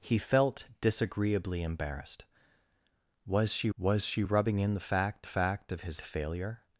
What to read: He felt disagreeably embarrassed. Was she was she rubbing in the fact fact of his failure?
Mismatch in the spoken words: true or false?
false